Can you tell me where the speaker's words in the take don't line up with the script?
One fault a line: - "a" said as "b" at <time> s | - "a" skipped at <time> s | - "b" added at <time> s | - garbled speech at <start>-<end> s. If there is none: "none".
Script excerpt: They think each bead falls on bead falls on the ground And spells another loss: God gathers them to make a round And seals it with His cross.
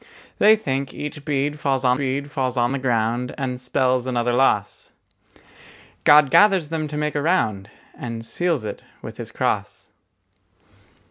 none